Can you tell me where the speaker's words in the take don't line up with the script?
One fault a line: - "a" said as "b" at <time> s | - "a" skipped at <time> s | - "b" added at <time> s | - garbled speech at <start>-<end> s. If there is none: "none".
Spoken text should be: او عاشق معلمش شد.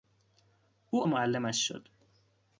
- "عاشق" skipped at 1.0 s